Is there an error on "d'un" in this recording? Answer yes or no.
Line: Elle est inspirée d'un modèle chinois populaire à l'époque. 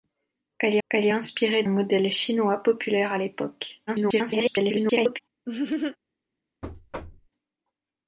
yes